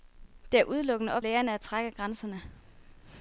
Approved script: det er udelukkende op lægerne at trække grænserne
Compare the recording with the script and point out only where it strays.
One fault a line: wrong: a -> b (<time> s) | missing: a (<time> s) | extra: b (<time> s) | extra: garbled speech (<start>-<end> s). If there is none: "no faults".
no faults